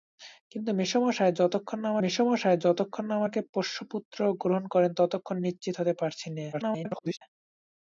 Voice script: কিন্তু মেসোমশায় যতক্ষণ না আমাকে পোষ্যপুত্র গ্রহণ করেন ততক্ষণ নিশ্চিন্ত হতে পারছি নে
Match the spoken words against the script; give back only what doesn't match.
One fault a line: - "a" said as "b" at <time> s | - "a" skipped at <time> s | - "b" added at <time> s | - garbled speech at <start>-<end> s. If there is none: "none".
- "মেসোমশায় যতক্ষণ না" added at 2.0 s
- garbled speech at 6.5-7.2 s